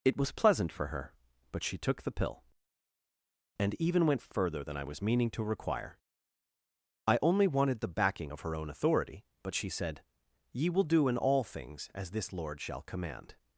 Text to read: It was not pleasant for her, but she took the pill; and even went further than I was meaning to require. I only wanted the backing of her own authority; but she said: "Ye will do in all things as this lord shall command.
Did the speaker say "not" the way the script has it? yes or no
no